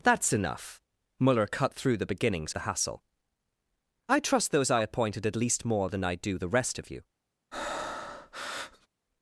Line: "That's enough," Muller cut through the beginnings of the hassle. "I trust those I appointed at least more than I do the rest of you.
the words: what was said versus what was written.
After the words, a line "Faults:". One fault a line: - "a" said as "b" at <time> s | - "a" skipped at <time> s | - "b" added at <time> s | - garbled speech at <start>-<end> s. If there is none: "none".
"That's enough," Muller cut through the beginnings the hassle. "I trust those I appointed at least more than I do the rest of you.
Faults:
- "of" skipped at 2.5 s